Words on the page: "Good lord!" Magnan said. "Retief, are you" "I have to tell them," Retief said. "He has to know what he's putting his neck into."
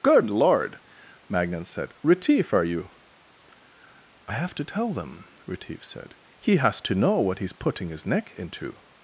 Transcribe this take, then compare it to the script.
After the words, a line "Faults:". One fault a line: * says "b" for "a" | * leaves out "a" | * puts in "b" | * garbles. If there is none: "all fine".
"Good lord!" Magnan said. "Retief, are you" "I have to tell them," Retief said. "He has to know what he's putting his neck into."
Faults:
all fine